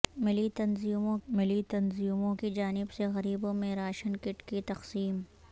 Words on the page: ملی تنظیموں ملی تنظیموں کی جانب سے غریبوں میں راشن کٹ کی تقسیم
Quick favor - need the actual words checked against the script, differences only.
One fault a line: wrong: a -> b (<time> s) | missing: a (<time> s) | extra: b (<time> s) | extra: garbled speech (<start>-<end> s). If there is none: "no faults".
no faults